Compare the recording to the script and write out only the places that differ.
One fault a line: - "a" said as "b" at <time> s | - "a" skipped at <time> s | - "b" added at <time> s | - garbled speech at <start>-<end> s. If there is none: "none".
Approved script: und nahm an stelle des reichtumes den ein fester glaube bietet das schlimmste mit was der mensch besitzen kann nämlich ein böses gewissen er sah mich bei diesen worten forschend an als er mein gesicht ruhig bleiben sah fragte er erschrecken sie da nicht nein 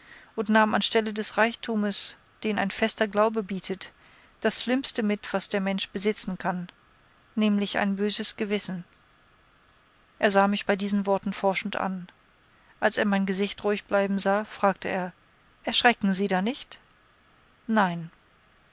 none